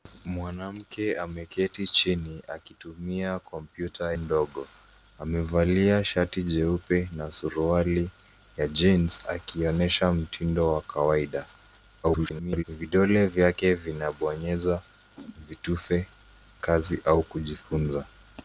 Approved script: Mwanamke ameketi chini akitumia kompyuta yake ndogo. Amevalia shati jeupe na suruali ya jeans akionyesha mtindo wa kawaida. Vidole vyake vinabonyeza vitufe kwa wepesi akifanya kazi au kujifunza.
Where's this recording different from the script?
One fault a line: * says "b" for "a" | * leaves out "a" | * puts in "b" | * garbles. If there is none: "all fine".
* leaves out "yake"
* garbles
* leaves out "kwa wepesi akifanya"